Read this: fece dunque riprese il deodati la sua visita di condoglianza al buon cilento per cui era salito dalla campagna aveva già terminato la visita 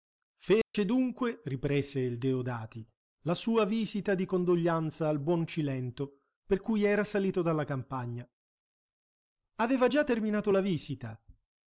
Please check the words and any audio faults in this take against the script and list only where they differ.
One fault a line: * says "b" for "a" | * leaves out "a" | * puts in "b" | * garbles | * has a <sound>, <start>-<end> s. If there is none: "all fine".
* has a dropout, 0.6-0.7 s